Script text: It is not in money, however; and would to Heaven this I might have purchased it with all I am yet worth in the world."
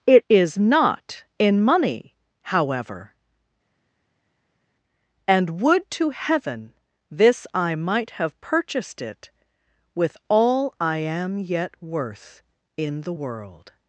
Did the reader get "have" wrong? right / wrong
right